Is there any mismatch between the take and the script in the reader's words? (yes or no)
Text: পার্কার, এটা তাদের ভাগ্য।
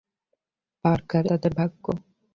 yes